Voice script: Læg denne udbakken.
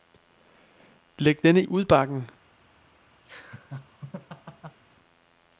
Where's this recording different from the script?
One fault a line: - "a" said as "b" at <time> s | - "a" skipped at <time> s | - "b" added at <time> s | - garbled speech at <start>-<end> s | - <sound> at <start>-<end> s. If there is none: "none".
- laugh at 3.3-4.8 s